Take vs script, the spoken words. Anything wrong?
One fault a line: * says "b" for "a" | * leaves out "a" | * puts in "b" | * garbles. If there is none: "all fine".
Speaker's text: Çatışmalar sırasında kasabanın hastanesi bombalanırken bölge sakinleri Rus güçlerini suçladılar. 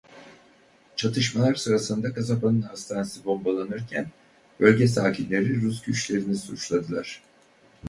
all fine